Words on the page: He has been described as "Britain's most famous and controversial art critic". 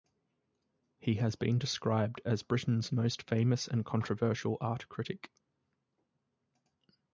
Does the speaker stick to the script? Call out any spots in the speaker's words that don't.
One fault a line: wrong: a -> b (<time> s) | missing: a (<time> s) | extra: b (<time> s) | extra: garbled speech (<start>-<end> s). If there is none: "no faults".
no faults